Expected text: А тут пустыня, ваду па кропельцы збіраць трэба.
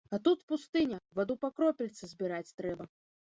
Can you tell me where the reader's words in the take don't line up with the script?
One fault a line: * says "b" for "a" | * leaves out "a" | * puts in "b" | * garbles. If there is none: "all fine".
all fine